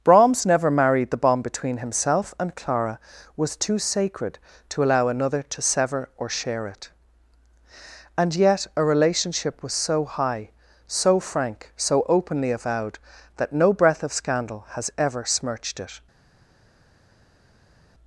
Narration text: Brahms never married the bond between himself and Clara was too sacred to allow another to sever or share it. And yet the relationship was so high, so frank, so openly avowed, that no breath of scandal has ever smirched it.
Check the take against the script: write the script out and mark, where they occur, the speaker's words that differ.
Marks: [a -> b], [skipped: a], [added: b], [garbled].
Brahms never married the bond between himself and Clara was too sacred to allow another to sever or share it. And yet [the -> a] relationship was so high, so frank, so openly avowed, that no breath of scandal has ever smirched it.